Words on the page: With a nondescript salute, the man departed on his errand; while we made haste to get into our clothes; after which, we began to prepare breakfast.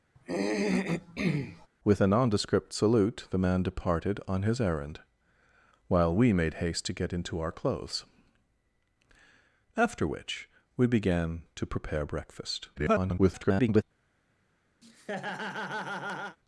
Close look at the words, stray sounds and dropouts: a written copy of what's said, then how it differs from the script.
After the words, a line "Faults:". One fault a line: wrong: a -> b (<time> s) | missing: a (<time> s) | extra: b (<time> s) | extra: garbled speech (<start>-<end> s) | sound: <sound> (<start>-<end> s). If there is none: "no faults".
With a nondescript salute, the man departed on his errand; while we made haste to get into our clothes; after which, we began to prepare breakfast. [garbled]
Faults:
sound: throat clearing (0.2-1.7 s)
extra: garbled speech (12.8-13.8 s)
sound: laugh (14.8-16.4 s)